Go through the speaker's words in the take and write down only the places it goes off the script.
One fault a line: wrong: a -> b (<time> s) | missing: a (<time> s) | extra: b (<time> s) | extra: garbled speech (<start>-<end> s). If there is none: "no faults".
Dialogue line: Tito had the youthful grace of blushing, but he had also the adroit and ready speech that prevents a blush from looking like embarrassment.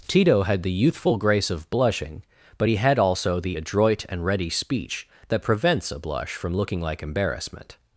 no faults